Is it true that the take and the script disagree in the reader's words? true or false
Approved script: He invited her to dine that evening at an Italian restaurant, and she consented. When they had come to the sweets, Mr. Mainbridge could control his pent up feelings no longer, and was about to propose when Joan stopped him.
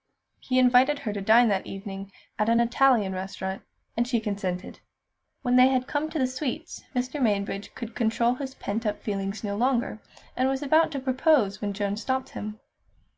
false